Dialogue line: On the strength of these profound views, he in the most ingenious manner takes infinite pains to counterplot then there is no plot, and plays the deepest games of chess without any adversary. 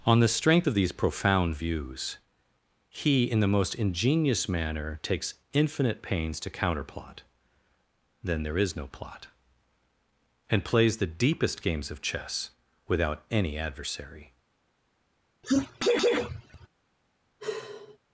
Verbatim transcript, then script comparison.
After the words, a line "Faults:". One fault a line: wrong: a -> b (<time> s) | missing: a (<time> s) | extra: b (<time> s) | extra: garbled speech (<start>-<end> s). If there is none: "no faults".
On the strength of these profound views, he in the most ingenious manner takes infinite pains to counterplot then there is no plot, and plays the deepest games of chess without any adversary.
Faults:
no faults